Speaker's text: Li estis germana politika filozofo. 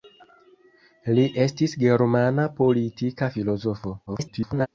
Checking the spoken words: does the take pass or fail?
fail